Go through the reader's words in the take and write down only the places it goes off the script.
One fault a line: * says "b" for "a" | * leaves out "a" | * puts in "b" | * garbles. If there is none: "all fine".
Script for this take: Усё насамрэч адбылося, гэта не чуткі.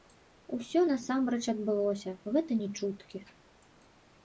all fine